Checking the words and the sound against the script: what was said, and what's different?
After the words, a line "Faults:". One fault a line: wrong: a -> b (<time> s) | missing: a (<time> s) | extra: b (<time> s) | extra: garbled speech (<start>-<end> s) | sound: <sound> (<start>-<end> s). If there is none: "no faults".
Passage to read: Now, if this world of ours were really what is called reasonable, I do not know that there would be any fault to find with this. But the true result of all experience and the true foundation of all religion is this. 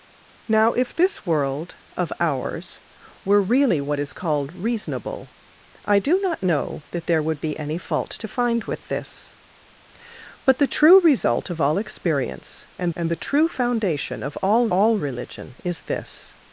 Now, if this world of ours were really what is called reasonable, I do not know that there would be any fault to find with this. But the true result of all experience and and the true foundation of all all religion is this.
Faults:
extra: and (12.9 s)
extra: all (14.7 s)